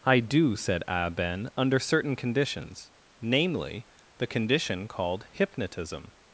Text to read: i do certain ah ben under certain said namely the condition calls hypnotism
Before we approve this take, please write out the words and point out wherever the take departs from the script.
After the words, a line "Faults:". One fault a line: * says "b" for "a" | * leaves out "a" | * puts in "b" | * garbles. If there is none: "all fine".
i do said ah ben under certain conditions namely the condition called hypnotism
Faults:
* says "said" for "certain"
* says "conditions" for "said"
* says "called" for "calls"